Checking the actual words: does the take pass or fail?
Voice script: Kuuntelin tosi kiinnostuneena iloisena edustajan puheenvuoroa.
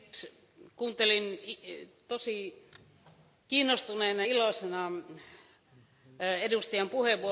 pass